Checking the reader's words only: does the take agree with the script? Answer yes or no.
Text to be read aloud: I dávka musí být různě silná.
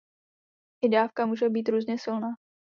no